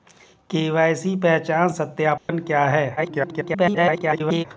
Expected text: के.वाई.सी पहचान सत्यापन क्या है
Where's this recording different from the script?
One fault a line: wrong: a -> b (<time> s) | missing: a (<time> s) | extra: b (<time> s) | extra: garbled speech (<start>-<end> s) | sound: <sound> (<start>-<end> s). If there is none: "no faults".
sound: dropout (2.2-2.3 s)
extra: garbled speech (3.0-4.4 s)